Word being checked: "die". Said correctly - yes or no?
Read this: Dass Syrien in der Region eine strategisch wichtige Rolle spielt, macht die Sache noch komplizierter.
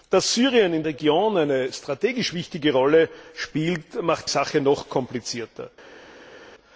no